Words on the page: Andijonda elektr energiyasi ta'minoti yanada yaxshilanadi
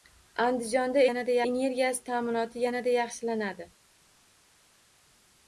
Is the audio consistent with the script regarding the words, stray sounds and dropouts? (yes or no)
no